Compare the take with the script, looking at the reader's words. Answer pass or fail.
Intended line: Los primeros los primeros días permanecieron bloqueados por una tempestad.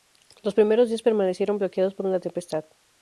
fail